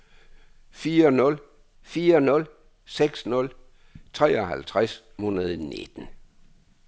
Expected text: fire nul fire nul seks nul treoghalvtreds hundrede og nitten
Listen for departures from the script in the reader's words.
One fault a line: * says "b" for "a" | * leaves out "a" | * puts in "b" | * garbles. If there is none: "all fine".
all fine